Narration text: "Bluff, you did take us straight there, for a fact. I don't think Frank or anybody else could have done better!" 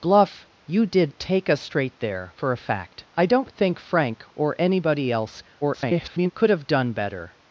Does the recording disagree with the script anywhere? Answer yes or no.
yes